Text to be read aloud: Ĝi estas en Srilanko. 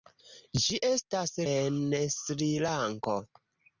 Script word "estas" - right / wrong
right